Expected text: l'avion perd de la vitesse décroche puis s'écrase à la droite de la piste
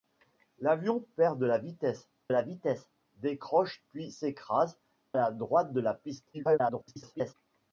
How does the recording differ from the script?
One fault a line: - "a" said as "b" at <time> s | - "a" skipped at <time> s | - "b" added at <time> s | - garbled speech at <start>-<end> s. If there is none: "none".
- "la vitesse" added at 2.3 s
- "à" skipped at 4.8 s
- garbled speech at 6.3-7.3 s